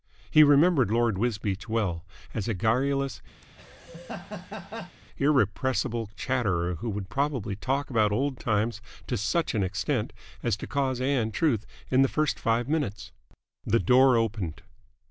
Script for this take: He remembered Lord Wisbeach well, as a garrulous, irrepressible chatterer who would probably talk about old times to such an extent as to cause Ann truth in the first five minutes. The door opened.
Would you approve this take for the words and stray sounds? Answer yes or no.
no